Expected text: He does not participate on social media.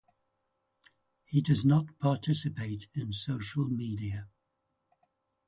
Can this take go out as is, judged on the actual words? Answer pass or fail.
fail